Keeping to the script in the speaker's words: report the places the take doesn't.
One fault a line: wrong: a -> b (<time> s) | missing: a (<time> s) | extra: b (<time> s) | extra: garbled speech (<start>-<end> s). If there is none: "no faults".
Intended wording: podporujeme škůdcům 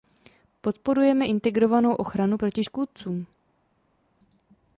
extra: integrovanou ochranu proti (1.2 s)